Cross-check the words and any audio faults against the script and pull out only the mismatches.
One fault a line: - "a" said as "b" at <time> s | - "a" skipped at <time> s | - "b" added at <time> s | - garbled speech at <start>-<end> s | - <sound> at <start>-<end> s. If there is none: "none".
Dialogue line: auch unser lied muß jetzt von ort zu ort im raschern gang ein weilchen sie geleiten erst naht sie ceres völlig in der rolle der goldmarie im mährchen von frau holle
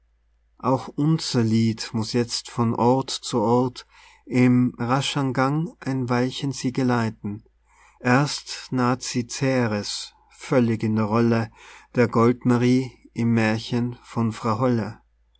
none